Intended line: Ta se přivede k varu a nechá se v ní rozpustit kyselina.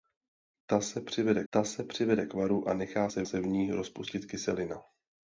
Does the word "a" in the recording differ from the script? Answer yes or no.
no